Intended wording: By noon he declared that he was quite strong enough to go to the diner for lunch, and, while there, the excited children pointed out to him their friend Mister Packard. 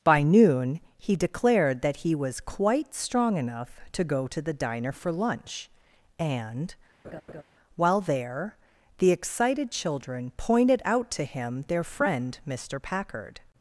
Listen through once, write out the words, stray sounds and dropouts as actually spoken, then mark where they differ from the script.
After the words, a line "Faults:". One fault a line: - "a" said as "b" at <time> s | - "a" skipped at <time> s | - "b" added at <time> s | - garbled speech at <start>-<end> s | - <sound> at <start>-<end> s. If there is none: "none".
By noon he declared that he was quite strong enough to go to the diner for lunch, and, while there, the excited children pointed out to him their friend Mister Packard.
Faults:
- laugh at 7.0-7.4 s